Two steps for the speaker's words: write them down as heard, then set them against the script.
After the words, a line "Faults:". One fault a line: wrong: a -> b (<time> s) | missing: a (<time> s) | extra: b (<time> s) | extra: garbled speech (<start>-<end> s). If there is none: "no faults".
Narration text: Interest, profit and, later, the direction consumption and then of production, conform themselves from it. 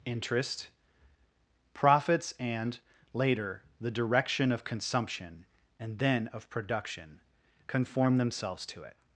Interest, profits and, later, the direction of consumption and then of production, conform themselves to it.
Faults:
wrong: profit -> profits (1.8 s)
extra: of (4.5 s)
wrong: from -> to (8.7 s)